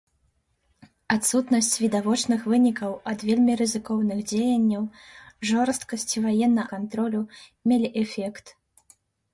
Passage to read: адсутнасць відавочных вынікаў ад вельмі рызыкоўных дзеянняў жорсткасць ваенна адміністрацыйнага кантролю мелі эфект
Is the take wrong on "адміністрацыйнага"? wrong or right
wrong